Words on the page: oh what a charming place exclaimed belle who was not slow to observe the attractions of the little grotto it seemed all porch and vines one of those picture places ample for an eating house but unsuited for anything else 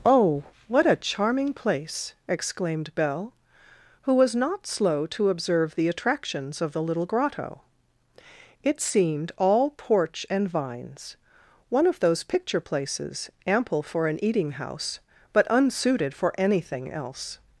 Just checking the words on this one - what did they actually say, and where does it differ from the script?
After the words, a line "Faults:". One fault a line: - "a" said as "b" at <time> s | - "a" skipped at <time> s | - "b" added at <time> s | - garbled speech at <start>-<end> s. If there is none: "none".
oh what a charming place exclaimed belle who was not slow to observe the attractions of the little grotto it seemed all porch and vines one of those picture places ample for an eating house but unsuited for anything else
Faults:
none